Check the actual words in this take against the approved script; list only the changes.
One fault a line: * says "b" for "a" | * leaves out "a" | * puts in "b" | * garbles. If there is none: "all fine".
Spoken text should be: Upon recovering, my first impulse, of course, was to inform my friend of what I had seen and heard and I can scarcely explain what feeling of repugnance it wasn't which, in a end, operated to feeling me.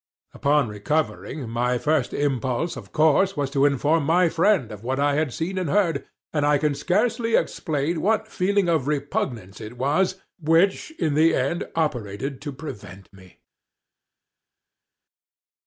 * says "was" for "wasn't"
* says "the" for "a"
* says "prevent" for "feeling"